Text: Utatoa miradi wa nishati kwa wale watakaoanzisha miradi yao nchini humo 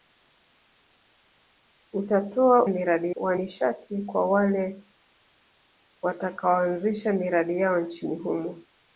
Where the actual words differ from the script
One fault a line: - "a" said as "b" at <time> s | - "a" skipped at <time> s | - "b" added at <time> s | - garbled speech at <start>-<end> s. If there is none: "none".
none